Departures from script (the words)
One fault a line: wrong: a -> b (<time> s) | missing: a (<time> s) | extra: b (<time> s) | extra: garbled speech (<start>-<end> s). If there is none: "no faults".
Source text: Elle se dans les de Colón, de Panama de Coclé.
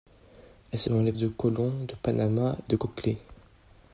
no faults